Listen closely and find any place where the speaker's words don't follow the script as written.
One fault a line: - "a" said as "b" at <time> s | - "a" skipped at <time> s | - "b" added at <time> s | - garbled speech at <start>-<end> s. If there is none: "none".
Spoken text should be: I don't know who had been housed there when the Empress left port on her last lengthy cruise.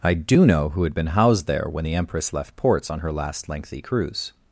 - "don't" said as "do" at 0.1 s
- "port" said as "ports" at 2.5 s